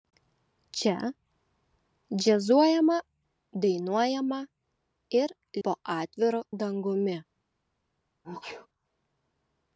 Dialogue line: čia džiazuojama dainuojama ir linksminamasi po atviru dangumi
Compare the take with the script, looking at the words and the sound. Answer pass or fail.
fail